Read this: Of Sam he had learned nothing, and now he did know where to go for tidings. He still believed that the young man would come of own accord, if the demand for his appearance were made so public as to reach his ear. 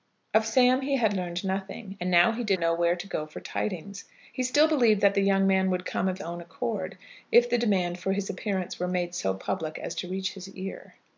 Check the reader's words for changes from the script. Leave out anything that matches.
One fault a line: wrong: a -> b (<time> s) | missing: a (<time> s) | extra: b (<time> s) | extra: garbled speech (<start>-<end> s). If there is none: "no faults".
no faults